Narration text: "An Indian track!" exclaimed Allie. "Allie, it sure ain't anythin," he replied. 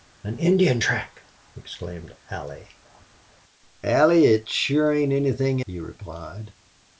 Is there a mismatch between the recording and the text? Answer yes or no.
no